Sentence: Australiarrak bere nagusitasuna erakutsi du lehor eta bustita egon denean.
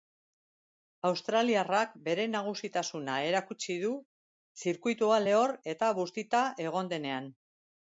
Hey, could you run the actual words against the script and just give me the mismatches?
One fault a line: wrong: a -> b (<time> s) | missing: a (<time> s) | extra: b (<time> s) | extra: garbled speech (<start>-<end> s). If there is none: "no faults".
extra: zirkuitua (4.7 s)